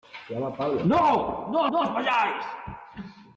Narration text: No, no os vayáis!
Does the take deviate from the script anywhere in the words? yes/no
yes